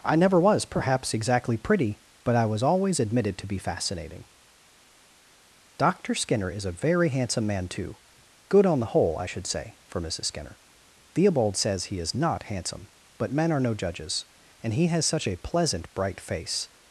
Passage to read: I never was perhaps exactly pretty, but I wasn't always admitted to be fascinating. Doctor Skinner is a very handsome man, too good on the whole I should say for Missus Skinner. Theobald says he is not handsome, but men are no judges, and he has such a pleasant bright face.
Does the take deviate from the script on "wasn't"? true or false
true